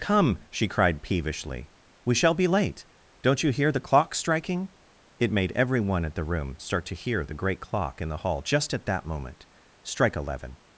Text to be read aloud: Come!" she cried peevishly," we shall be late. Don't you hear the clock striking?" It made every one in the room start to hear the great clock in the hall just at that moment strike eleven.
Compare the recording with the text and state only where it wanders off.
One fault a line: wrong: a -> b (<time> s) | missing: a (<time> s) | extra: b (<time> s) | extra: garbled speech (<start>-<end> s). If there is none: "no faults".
wrong: in -> at (6.0 s)